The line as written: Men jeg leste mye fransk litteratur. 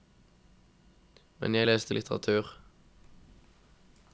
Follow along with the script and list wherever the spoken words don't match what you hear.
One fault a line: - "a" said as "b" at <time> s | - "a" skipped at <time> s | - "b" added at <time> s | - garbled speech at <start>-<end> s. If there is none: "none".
- "mye fransk" skipped at 2.0 s